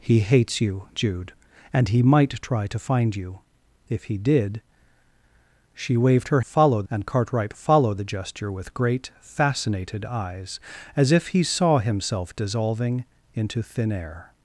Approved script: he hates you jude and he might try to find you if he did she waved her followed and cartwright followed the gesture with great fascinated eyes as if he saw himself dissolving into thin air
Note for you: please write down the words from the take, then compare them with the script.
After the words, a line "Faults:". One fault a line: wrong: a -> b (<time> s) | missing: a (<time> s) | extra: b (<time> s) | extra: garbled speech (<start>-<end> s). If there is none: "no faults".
he hates you jude and he might try to find you if he did she waved her followed and cartwright followed the gesture with great fascinated eyes as if he saw himself dissolving into thin air
Faults:
no faults